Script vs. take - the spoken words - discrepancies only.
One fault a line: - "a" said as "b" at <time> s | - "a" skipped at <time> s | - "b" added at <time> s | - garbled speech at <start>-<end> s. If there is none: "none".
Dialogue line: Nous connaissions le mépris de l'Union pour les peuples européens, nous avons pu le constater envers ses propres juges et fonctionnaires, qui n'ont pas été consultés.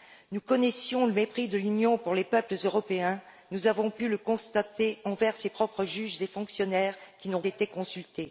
- "pas" skipped at 7.4 s